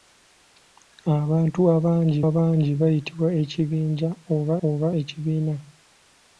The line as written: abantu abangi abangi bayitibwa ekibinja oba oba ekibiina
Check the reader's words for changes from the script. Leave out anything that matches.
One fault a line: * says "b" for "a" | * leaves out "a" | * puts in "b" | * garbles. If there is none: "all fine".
all fine